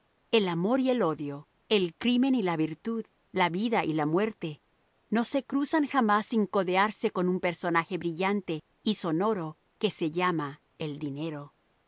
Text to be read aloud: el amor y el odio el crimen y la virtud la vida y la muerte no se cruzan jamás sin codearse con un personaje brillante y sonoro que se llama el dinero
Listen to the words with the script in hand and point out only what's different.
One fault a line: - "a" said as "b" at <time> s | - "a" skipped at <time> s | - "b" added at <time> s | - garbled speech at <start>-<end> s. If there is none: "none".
none